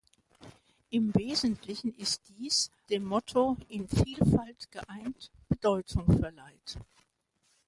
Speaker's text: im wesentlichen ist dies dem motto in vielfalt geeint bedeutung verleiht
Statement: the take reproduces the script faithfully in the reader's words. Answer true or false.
true